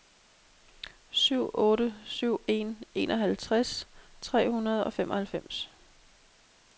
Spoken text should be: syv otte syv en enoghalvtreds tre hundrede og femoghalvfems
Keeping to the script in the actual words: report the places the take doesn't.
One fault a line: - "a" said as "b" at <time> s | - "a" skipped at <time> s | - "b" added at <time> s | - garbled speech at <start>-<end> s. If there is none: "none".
none